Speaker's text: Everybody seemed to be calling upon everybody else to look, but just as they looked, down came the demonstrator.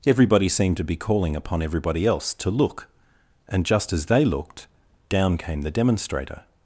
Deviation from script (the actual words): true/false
true